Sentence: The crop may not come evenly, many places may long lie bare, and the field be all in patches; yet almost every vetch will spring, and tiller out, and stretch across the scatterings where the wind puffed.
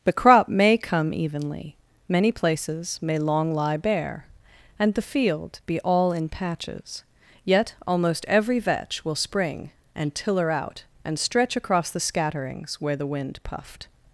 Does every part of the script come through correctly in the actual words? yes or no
no